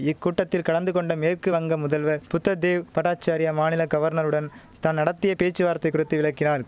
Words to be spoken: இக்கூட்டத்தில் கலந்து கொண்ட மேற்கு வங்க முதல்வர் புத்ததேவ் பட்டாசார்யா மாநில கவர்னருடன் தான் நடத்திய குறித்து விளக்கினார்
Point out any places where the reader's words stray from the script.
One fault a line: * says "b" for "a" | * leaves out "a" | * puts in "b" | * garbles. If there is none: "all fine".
* puts in "பேச்சுவார்த்தை"